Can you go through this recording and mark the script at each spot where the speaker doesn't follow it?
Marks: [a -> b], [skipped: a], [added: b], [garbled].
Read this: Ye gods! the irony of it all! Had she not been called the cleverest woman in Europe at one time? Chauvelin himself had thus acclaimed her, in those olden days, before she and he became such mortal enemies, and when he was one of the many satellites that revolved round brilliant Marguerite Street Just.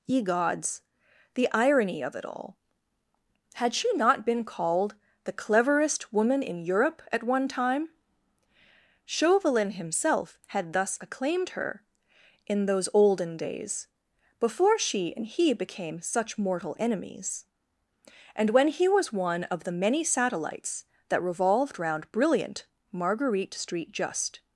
Ye gods! the irony of it all! Had she not been called the cleverest woman in Europe at one time? Chauvelin himself had thus acclaimed her, in those olden days, before she and he became such mortal enemies, and when he was one of the many satellites that revolved round brilliant Marguerite Street Just.